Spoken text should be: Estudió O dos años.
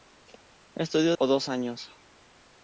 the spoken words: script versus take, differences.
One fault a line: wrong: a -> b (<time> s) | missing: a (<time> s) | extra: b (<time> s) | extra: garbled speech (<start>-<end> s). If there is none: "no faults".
no faults